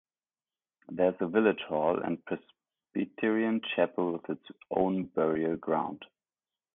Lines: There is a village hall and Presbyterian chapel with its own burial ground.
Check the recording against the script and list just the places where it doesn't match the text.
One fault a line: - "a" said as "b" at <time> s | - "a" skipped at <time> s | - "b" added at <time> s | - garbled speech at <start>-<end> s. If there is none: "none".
none